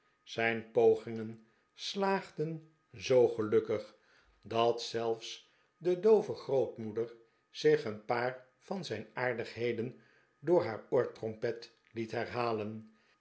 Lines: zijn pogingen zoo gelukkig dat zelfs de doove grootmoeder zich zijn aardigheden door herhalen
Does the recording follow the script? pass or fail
fail